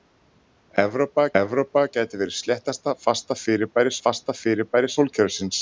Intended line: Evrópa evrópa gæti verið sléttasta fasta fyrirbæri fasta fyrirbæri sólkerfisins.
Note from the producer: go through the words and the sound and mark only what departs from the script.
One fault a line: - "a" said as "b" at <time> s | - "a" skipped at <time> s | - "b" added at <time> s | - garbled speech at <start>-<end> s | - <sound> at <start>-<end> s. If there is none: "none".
none